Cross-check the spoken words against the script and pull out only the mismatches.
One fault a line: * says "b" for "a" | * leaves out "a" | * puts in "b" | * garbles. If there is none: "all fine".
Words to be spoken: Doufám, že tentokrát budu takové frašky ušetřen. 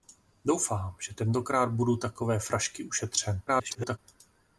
* garbles